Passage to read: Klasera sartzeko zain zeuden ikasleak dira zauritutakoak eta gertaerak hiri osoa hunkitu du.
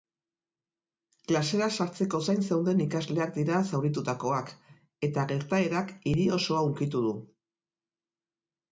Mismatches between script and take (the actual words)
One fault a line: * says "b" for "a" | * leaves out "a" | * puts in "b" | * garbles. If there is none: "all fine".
all fine